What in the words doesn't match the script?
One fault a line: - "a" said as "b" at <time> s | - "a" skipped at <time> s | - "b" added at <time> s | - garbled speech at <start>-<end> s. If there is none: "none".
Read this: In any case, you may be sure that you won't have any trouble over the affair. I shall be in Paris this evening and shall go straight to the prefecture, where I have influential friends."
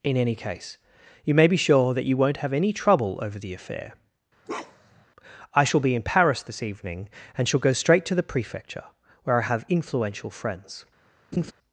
none